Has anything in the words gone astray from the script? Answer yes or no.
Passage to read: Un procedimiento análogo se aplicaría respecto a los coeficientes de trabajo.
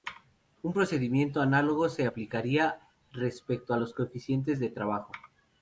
no